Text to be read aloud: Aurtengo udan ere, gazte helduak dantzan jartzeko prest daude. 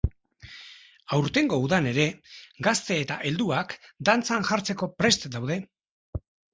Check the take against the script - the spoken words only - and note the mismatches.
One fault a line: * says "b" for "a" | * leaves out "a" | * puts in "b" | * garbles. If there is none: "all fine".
* puts in "eta"